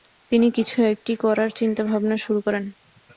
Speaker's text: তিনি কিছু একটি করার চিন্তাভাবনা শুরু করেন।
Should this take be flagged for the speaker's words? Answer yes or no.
no